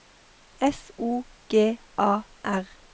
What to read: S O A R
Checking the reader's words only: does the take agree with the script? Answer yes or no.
no